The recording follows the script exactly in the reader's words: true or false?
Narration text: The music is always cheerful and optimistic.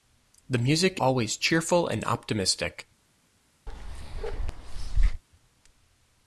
false